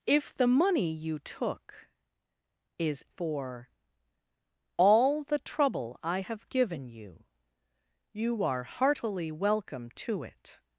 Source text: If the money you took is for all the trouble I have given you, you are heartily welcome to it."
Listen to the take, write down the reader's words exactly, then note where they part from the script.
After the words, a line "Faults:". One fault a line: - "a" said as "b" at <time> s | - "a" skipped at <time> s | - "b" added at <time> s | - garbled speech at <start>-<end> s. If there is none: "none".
If the money you took is for all the trouble I have given you, you are heartily welcome to it."
Faults:
none